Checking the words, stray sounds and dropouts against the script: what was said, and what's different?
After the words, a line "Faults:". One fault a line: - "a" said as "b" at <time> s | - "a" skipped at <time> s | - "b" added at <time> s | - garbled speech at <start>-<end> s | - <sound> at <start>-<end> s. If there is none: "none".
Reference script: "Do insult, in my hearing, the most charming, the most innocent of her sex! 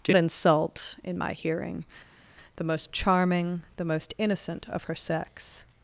"Do insult, in my hearing, the most charming, the most innocent of her sex!
Faults:
none